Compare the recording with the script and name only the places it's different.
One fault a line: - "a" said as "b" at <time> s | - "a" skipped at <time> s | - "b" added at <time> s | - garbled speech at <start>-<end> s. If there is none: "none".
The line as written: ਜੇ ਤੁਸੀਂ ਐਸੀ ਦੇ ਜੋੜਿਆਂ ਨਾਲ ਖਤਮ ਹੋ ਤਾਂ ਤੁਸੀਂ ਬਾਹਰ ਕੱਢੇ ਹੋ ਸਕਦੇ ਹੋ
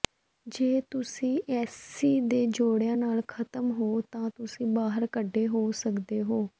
none